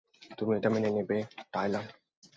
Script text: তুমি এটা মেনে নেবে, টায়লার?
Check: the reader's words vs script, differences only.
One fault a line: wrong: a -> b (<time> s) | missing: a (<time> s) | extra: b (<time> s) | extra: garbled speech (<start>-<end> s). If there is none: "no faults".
no faults